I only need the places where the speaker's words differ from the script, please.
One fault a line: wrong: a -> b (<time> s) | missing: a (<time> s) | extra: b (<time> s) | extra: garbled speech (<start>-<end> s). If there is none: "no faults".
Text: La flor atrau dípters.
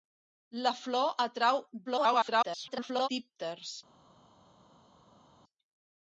extra: garbled speech (1.9-3.1 s)